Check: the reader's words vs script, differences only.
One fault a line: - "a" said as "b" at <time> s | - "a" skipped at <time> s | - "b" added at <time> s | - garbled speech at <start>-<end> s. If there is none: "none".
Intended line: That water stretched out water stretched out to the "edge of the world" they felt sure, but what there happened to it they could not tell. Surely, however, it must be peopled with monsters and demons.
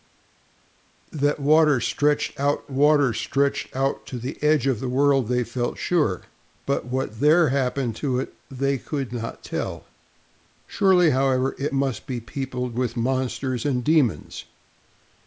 none